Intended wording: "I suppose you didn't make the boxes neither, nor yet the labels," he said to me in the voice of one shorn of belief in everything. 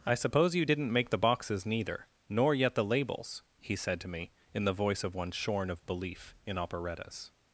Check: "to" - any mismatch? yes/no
no